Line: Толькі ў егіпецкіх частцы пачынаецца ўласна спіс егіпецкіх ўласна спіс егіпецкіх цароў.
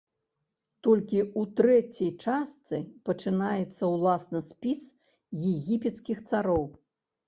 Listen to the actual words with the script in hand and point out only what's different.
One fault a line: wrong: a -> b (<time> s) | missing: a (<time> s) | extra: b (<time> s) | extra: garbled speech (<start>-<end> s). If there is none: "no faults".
wrong: егіпецкіх -> трэцяй (1.6 s)
missing: ўласна спіс егіпецкіх (6.3 s)